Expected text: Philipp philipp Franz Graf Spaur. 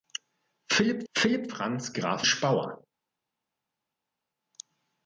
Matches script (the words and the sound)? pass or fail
pass